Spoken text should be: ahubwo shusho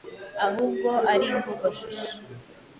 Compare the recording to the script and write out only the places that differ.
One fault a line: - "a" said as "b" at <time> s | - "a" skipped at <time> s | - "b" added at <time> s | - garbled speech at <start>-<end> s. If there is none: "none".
- "ari imvugo" added at 1.1 s